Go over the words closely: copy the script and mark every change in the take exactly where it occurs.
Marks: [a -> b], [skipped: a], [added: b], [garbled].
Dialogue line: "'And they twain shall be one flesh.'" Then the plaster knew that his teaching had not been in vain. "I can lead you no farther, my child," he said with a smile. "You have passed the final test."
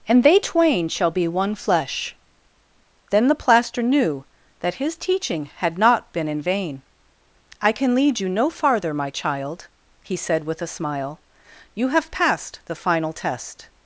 "'And they twain shall be one flesh.'" Then the plaster knew that his teaching had not been in vain. "I can lead you no farther, my child," he said with a smile. "You have passed the final test."